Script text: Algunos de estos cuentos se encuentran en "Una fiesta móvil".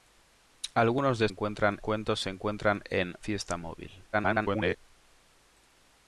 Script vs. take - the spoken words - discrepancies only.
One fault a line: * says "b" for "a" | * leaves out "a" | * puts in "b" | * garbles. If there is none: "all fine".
* says "encuentran" for "estos"
* leaves out "Una"
* garbles